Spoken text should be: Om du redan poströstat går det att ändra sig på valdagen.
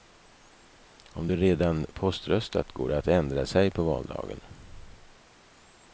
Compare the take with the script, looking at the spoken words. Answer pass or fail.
pass